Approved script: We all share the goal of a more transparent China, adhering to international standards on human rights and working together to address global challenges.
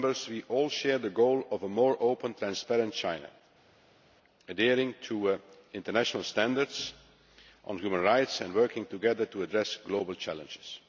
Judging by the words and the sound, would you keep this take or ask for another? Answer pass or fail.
fail